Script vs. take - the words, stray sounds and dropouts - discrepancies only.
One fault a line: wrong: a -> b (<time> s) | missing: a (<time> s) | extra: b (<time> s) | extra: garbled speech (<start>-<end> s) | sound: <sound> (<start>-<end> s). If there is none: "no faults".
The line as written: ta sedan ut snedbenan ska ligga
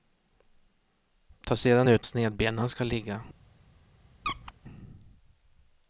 sound: squeak (4.2-4.5 s)